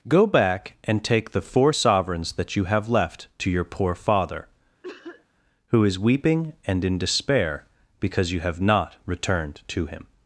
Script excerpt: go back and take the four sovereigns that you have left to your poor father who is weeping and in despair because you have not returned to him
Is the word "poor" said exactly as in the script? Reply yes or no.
yes